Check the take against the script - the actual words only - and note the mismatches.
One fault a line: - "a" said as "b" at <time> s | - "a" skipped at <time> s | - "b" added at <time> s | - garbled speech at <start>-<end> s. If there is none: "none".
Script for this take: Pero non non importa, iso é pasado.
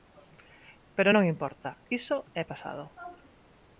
- "non" skipped at 1.3 s